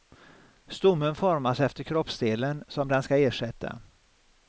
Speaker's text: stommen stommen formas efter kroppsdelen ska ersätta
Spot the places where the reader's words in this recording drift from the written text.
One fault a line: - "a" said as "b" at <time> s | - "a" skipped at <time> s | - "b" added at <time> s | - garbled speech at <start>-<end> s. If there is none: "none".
- "stommen" skipped at 1.1 s
- "som den" added at 2.7 s